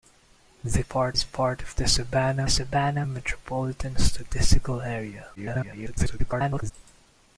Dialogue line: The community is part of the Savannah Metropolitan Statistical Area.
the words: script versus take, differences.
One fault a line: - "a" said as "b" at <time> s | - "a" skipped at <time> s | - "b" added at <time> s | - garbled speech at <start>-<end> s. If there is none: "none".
- "community" said as "part" at 0.8 s
- "Savannah" added at 2.5 s
- garbled speech at 5.4-6.7 s